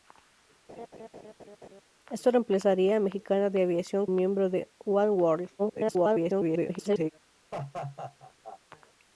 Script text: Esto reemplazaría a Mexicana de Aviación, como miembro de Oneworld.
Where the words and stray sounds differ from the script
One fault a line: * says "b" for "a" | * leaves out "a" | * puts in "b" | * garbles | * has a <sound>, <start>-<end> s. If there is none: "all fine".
* has a laugh, 0.7-1.8 s
* leaves out "como"
* garbles
* has a laugh, 7.5-8.6 s